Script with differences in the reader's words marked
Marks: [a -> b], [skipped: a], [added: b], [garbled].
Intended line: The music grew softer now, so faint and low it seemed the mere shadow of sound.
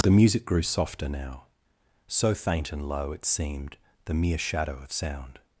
The music grew softer now, so faint and low it seemed the mere shadow of sound.